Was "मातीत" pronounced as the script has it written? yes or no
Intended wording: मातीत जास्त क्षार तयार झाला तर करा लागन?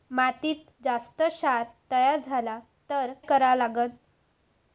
yes